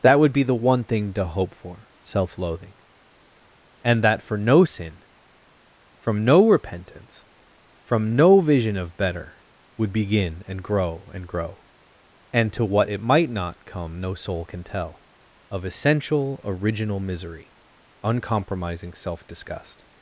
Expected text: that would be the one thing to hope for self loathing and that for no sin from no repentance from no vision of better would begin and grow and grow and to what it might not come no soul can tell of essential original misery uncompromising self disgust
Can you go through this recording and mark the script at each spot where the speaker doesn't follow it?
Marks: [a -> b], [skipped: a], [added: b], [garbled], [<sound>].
that would be the one thing to hope for self loathing and that for no sin from no repentance from no vision of better would begin and grow and grow and to what it might not come no soul can tell of essential original misery uncompromising self disgust